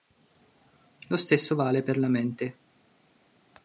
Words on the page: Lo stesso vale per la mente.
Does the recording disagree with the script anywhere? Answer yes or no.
no